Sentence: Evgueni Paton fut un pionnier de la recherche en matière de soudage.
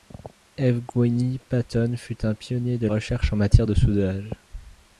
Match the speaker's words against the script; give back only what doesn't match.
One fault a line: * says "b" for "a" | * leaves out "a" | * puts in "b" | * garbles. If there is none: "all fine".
* leaves out "la"